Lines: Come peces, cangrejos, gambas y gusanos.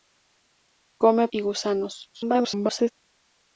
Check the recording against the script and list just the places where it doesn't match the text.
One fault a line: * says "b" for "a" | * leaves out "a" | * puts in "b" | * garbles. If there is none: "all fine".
* leaves out "peces cangrejos gambas"
* garbles